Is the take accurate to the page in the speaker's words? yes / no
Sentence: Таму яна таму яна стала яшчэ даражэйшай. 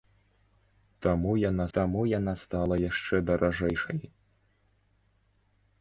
yes